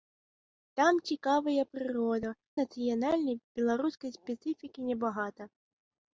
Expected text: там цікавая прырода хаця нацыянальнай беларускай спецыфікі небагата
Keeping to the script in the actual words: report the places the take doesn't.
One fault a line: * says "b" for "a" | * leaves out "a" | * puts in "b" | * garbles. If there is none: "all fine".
* leaves out "хаця"